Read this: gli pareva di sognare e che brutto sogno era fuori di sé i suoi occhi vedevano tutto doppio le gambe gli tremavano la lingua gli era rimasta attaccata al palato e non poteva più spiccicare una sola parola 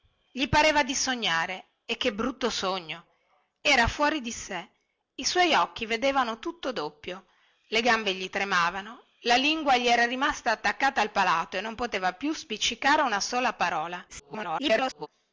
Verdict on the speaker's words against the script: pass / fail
fail